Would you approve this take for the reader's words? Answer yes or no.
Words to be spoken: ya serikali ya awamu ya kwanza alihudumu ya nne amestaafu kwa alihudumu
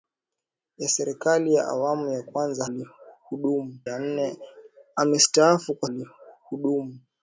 yes